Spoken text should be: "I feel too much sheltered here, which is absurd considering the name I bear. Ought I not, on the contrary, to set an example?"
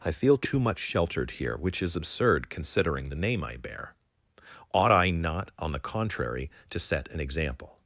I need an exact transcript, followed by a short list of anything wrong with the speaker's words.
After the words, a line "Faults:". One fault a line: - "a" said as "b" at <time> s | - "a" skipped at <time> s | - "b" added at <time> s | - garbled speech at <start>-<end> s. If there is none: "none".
"I feel too much sheltered here, which is absurd considering the name I bear. Ought I not, on the contrary, to set an example?"
Faults:
none